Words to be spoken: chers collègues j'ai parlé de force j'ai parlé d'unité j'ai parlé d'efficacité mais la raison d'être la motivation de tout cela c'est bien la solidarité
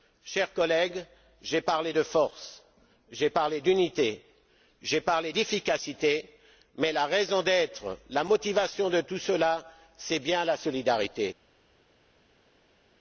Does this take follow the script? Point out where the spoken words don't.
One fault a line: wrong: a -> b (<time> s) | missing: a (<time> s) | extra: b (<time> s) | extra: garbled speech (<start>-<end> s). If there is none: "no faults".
no faults